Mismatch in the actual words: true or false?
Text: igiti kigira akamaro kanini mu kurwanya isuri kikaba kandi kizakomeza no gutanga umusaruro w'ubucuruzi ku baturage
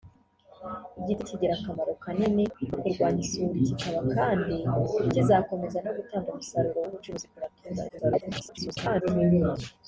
true